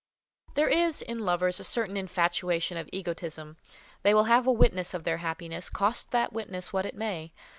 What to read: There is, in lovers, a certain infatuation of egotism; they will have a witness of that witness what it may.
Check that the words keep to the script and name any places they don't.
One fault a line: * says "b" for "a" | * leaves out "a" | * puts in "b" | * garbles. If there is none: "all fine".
* puts in "their happiness cost"